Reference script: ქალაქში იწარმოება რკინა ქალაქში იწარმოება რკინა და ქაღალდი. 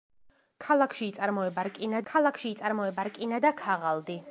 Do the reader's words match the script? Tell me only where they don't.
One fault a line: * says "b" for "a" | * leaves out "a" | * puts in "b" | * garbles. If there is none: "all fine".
all fine